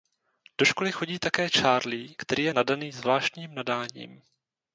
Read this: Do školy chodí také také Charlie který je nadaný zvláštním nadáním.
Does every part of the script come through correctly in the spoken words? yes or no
no